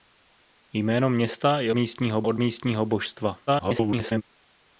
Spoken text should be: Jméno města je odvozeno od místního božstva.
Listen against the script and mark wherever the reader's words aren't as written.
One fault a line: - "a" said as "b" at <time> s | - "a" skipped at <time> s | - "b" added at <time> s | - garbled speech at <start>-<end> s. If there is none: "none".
- "odvozeno" said as "místního" at 1.7 s
- garbled speech at 3.5-4.2 s